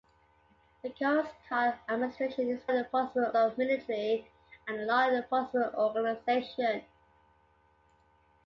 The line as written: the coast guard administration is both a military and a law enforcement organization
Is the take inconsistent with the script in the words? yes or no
yes